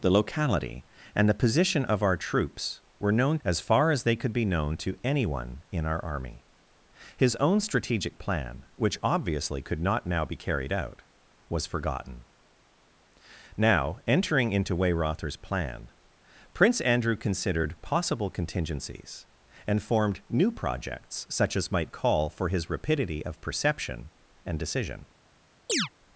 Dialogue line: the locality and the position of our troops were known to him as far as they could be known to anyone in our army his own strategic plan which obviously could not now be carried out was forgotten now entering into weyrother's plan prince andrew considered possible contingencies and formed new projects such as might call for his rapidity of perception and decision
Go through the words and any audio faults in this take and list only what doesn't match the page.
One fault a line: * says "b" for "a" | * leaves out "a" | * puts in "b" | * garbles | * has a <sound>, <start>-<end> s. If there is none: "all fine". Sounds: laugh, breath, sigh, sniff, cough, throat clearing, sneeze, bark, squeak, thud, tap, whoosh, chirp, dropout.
* leaves out "to him"
* has a chirp, 25.7-25.9 s